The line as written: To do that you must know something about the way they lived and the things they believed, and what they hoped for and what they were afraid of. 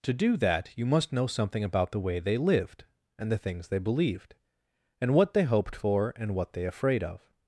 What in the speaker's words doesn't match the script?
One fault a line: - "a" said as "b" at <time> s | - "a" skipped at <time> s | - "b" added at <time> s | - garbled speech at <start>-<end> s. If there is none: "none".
- "were" skipped at 6.6 s